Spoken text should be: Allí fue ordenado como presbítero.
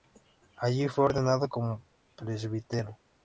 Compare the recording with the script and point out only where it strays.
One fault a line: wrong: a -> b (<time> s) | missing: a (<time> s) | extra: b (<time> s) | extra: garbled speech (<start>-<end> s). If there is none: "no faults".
no faults